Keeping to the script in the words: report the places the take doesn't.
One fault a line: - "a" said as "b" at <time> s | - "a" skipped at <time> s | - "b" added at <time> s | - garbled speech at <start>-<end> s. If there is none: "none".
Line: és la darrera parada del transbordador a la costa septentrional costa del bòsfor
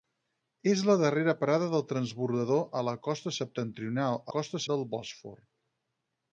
none